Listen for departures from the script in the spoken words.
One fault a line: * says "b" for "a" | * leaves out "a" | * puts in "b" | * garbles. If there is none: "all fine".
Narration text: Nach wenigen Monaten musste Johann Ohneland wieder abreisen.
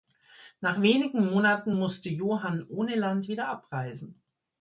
all fine